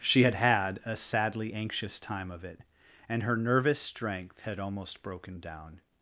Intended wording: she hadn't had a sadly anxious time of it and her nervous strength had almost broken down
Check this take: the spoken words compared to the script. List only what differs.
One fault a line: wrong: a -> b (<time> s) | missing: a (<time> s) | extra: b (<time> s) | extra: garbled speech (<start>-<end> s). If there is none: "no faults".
wrong: hadn't -> had (0.2 s)